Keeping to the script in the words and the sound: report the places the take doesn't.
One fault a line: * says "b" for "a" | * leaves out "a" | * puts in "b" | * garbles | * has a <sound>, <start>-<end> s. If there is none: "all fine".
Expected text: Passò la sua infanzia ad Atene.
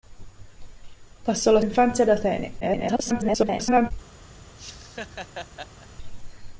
* leaves out "sua"
* garbles
* has a laugh, 4.6-5.9 s